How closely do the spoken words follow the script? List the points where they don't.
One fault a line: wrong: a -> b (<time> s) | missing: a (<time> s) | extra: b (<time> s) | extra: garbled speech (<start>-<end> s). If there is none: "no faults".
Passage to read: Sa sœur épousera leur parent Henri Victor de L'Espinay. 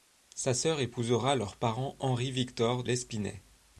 missing: de (2.8 s)